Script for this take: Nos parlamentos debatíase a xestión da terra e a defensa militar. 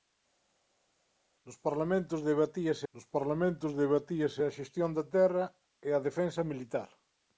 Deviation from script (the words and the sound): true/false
true